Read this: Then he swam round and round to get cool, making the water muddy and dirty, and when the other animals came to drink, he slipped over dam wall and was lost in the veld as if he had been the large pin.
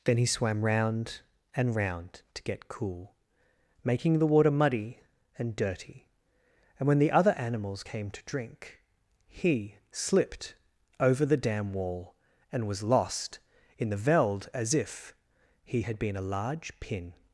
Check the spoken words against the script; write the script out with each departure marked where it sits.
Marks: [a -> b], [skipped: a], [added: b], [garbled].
Then he swam round and round to get cool, making the water muddy and dirty, and when the other animals came to drink, he slipped over [added: the] dam wall and was lost in the veld as if he had been [the -> a] large pin.